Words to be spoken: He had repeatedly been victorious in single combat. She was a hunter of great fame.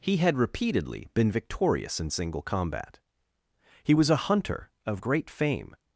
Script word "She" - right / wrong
wrong